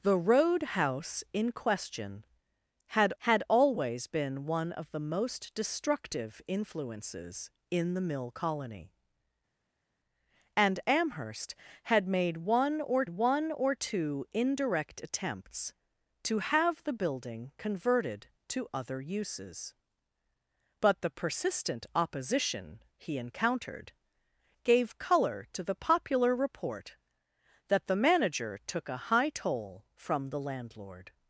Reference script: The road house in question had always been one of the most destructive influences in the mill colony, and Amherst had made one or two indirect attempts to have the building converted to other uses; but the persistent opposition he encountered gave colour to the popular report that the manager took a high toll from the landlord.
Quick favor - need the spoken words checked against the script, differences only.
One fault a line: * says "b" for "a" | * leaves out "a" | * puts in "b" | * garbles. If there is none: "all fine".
* puts in "had"
* puts in "one or"